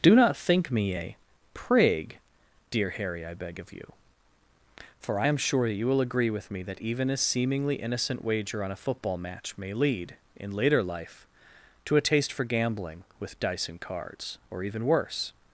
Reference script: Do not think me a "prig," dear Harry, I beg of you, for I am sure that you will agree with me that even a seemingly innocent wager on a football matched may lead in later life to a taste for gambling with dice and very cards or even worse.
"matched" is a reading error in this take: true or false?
true